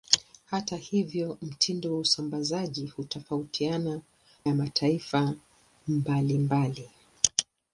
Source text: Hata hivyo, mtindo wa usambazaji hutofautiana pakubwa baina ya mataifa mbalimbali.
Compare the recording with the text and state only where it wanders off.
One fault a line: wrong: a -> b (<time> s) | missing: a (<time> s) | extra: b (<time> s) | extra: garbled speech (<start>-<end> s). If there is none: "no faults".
missing: pakubwa baina (4.0 s)